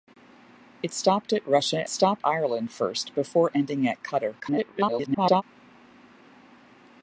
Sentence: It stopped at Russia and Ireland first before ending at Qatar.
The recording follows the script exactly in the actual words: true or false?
false